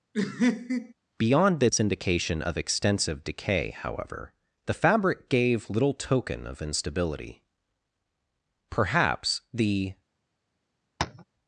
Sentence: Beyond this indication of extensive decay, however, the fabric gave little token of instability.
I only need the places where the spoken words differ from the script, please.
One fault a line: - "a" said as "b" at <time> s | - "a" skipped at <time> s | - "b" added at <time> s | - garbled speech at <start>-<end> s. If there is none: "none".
- "Perhaps the" added at 8.7 s